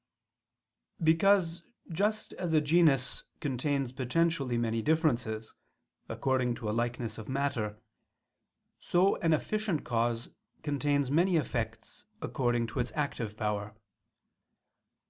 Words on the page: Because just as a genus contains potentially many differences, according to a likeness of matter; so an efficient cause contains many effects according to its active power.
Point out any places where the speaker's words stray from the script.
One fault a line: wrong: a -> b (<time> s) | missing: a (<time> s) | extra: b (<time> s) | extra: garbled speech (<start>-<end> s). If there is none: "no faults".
no faults